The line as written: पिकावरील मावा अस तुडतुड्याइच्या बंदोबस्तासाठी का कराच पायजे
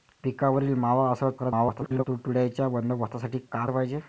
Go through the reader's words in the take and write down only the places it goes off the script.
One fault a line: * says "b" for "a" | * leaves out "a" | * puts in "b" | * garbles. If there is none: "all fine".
* garbles
* leaves out "कराच"